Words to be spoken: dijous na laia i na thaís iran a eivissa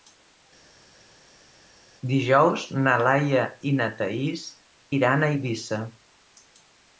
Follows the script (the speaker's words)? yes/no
yes